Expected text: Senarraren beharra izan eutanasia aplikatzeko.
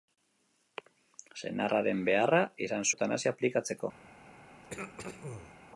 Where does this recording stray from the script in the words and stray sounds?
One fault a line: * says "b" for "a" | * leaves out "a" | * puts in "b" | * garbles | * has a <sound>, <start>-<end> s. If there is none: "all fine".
* has a throat clearing, 4.6-5.5 s